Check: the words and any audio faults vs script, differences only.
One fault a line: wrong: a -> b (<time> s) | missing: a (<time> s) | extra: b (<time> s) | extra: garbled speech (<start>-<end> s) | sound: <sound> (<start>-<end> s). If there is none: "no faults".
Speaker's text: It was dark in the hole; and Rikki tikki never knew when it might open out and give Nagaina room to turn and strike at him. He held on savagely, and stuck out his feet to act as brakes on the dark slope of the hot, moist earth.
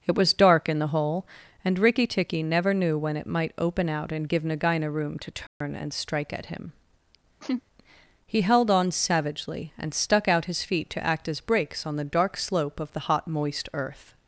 sound: dropout (5.5-5.6 s)
sound: laugh (7.4-7.6 s)